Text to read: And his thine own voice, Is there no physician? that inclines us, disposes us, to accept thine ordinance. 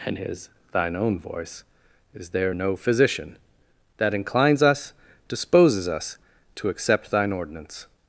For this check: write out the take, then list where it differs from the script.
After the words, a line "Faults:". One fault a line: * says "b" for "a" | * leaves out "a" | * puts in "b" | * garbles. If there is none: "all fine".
And his thine own voice, Is there no physician? that inclines us, disposes us, to accept thine ordinance.
Faults:
all fine